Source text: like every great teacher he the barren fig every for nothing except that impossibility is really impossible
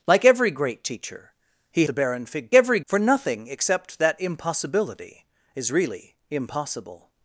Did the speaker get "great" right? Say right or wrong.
right